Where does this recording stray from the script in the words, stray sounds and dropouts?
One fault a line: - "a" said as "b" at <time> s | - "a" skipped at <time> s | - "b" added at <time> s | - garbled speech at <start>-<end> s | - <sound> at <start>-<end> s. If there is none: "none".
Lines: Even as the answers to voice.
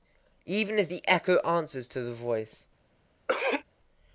- "echo" added at 1.1 s
- "the" added at 2.0 s
- throat clearing at 3.3-3.6 s